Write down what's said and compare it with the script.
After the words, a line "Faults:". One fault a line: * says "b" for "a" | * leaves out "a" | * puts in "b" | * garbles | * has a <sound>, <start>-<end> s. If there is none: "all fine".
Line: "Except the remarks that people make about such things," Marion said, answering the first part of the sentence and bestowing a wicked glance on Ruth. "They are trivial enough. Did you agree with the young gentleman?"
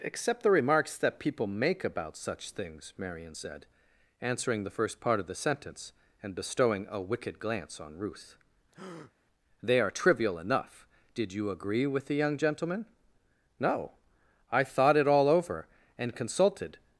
"Except the remarks that people make about such things," Marion said, answering the first part of the sentence and bestowing a wicked glance on Ruth. "They are trivial enough. Did you agree with the young gentleman?" "No. I thought it all over and consulted
Faults:
* has a breath, 8.7-9.1 s
* puts in "No I thought it all over and consulted"